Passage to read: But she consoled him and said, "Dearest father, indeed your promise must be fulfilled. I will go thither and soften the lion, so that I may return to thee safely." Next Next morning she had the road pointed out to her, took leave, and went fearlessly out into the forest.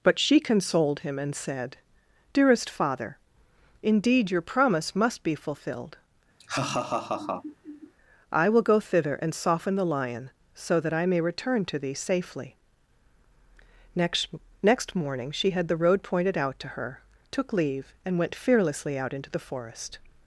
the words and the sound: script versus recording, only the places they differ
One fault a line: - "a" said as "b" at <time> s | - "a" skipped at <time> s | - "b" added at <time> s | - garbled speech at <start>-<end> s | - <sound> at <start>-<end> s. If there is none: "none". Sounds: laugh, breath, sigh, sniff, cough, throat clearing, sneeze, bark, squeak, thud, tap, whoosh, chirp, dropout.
- laugh at 6.4-7.9 s